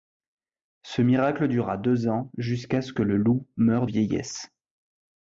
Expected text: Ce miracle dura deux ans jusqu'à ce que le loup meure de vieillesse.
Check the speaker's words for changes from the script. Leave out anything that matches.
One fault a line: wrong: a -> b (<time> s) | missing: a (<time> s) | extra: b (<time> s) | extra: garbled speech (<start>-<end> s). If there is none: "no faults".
missing: de (3.9 s)